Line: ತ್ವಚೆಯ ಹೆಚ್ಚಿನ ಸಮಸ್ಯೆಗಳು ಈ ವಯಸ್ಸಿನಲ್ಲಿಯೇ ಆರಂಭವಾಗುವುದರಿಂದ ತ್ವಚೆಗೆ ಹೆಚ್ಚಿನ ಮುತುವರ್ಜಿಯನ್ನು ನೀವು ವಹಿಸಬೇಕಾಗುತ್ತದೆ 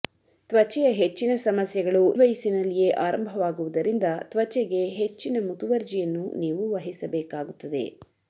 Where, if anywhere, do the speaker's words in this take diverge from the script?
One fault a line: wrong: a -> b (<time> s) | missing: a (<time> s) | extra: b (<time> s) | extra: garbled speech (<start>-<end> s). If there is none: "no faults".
missing: ಈ (2.0 s)